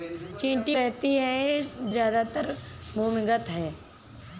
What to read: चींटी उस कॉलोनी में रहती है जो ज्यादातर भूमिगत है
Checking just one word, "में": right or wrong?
wrong